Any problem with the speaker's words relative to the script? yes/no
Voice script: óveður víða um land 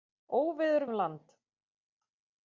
yes